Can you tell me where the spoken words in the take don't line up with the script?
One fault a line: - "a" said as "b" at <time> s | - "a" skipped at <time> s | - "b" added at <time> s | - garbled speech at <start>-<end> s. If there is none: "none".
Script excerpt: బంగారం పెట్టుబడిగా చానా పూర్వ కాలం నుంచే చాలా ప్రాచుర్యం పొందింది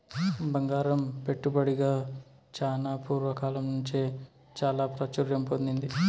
none